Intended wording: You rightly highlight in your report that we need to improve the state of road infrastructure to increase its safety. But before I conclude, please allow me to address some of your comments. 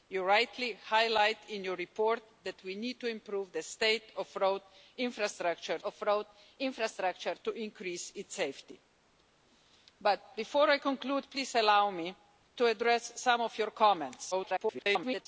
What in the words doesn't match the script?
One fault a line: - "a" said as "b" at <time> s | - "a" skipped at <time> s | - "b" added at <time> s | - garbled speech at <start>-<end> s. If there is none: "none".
- "of road infrastructure" added at 5.8 s
- garbled speech at 14.3-15.3 s